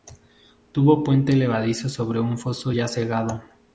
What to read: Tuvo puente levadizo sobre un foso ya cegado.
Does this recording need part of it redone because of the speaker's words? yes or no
no